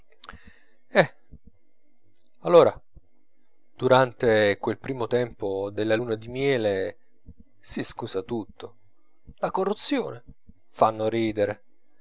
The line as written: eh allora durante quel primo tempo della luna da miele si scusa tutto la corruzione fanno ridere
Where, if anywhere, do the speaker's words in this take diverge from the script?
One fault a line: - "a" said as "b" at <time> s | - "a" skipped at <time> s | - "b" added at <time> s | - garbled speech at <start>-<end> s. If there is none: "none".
- "da" said as "di" at 6.2 s